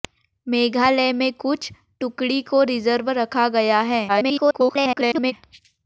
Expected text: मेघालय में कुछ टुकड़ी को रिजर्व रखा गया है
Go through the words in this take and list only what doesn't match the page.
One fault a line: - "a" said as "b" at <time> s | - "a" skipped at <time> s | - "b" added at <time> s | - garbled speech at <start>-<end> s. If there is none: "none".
- garbled speech at 4.1-5.3 s